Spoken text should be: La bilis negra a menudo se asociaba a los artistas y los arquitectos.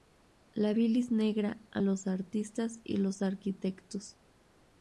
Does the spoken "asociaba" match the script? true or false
false